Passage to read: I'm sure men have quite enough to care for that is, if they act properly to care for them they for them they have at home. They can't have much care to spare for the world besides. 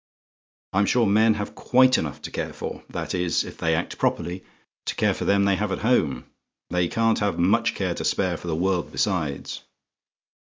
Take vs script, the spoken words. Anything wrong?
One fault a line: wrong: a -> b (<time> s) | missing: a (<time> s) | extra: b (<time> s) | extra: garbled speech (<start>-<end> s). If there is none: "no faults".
missing: for them they (5.6 s)